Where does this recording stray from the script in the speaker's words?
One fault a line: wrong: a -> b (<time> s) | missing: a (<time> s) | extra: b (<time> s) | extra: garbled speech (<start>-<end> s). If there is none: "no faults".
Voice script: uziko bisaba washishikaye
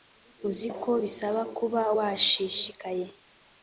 extra: kuba (1.6 s)